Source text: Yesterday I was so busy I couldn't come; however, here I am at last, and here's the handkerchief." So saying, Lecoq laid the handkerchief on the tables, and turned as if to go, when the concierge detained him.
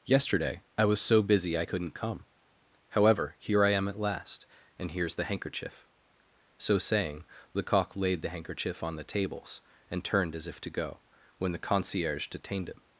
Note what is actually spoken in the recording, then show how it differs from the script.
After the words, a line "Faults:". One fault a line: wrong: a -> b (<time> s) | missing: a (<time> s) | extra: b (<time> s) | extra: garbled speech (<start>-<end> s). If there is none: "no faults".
Yesterday I was so busy I couldn't come; however, here I am at last, and here's the handkerchief." So saying, Lecoq laid the handkerchief on the tables, and turned as if to go, when the concierge detained him.
Faults:
no faults